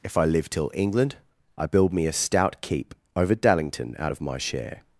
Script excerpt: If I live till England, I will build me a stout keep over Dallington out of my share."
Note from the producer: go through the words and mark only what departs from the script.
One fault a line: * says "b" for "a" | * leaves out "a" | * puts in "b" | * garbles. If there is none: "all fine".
* leaves out "will"